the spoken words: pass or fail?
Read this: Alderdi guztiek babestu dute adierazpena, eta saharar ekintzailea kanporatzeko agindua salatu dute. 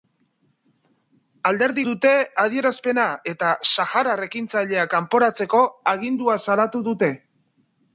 fail